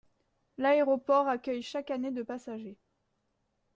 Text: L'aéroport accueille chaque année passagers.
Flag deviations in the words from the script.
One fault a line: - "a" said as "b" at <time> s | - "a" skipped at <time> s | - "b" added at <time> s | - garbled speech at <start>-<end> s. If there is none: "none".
- "de" added at 2.1 s